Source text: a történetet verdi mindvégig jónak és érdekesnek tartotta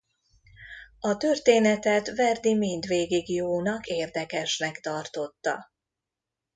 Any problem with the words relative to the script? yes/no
yes